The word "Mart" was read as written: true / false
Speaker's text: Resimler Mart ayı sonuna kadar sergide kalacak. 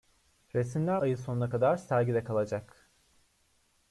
false